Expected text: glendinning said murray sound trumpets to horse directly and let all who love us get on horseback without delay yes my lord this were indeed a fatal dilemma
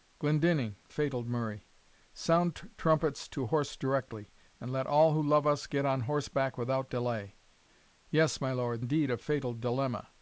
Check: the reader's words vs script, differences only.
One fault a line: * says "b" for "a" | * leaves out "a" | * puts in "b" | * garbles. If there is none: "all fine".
* says "fatal" for "said"
* leaves out "this were"